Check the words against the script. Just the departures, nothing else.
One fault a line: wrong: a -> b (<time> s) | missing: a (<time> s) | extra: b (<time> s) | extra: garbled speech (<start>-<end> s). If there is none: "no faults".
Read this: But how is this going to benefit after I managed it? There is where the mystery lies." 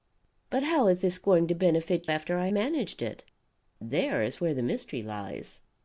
no faults